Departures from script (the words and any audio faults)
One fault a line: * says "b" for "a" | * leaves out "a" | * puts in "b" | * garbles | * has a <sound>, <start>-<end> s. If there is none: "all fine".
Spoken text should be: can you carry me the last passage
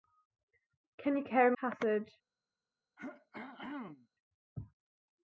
* leaves out "me the last"
* has a throat clearing, 3.0-4.1 s